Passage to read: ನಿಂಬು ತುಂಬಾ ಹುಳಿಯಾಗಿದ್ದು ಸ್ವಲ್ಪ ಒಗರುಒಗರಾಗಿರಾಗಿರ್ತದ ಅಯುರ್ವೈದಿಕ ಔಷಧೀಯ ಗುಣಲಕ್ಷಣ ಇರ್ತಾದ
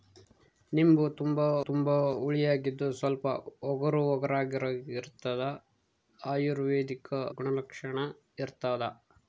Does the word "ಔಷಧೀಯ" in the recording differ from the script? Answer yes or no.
yes